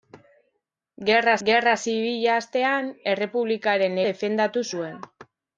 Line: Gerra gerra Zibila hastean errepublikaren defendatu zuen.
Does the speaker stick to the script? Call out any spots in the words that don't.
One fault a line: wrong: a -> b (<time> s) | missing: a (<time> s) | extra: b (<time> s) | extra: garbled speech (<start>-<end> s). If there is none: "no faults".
no faults